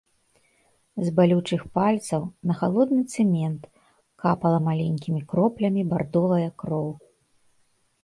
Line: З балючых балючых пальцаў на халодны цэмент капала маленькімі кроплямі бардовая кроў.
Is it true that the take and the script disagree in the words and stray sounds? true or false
true